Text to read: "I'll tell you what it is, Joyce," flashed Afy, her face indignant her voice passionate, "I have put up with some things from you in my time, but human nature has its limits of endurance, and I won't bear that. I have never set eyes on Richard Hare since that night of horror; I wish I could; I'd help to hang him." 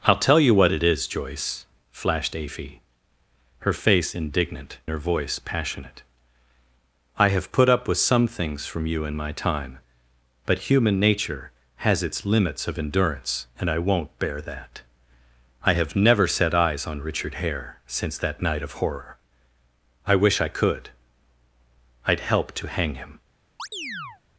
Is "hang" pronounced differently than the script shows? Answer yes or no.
no